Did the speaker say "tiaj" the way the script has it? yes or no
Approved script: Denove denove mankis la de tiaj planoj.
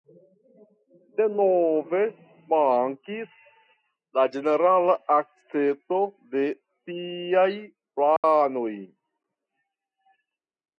yes